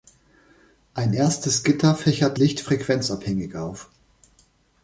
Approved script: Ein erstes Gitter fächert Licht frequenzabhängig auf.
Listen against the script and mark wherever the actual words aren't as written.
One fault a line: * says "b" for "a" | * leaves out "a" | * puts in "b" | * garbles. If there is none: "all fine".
all fine